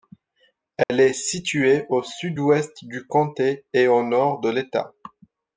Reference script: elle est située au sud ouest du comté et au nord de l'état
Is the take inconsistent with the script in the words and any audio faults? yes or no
yes